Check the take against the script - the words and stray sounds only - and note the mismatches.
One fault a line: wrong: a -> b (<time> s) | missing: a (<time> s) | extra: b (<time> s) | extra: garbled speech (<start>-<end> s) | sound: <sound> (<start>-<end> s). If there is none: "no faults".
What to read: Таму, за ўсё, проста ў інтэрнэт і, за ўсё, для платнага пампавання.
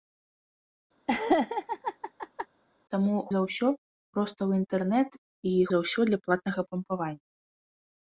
sound: laugh (1.1-2.5 s)